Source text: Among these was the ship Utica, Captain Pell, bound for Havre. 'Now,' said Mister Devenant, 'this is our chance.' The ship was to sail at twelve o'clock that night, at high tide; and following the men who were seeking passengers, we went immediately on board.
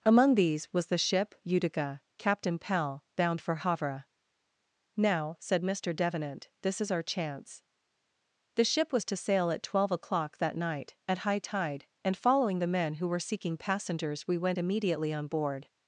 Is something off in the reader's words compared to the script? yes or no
no